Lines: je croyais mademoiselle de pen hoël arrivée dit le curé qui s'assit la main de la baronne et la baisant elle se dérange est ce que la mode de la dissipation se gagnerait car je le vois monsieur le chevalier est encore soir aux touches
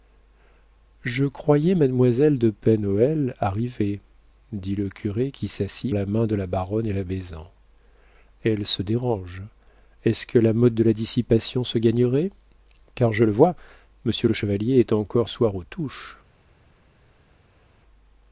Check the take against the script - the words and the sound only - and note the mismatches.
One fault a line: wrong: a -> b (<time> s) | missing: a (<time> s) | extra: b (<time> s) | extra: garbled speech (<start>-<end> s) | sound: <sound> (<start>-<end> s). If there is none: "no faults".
no faults